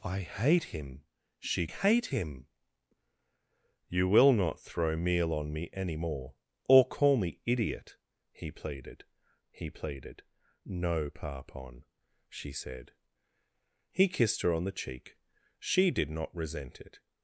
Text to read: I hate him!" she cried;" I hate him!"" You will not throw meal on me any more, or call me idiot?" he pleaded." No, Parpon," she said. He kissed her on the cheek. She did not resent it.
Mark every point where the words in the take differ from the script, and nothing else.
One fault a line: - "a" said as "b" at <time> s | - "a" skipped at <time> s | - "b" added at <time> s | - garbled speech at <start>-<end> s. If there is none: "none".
- "cried I" skipped at 1.7 s
- "he pleaded" added at 9.5 s